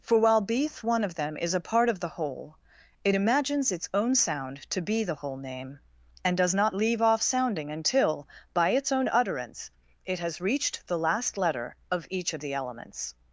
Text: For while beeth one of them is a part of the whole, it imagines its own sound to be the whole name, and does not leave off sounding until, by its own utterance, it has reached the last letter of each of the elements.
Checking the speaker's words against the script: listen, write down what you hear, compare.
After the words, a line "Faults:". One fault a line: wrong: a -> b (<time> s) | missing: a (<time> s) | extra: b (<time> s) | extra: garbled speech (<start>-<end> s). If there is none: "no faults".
For while beeth one of them is a part of the whole, it imagines its own sound to be the whole name, and does not leave off sounding until, by its own utterance, it has reached the last letter of each of the elements.
Faults:
no faults